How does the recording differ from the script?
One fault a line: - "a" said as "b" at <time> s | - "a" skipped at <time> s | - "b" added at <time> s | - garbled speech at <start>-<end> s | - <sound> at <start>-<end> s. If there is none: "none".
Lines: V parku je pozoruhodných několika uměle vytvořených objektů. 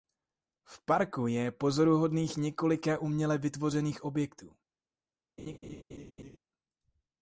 - laugh at 5.4-6.4 s